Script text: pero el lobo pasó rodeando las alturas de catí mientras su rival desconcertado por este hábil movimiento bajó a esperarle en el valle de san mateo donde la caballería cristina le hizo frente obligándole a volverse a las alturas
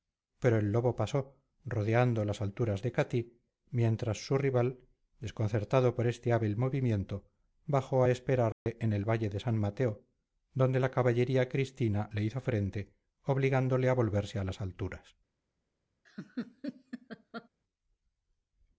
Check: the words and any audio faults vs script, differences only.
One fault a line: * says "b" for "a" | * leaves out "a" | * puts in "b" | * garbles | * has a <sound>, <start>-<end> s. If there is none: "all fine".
* has a dropout, 8.5-8.7 s
* has a laugh, 16.0-17.5 s